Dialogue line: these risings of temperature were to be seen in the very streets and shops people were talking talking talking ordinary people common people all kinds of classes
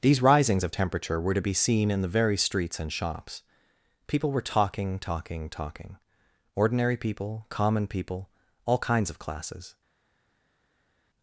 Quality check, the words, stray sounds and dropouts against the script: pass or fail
pass